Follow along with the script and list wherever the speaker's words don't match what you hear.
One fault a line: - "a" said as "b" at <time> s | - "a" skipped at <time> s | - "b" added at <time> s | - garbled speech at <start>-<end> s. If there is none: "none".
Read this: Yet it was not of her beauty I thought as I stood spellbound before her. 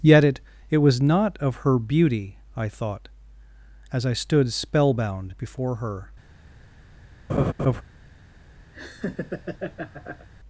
- "it" added at 0.7 s